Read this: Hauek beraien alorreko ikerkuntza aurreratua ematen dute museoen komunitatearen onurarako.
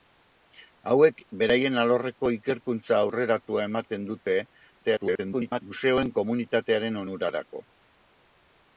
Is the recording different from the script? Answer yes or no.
yes